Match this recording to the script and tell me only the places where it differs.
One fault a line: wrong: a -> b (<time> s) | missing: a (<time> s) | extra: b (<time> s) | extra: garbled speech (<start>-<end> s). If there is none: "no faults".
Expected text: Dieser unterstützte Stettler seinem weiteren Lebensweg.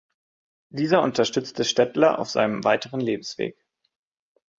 extra: auf (2.2 s)